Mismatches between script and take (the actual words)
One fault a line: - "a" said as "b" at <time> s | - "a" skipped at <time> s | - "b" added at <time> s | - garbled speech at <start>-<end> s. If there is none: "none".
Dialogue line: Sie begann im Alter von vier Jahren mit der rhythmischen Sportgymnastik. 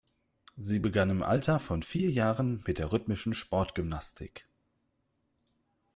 none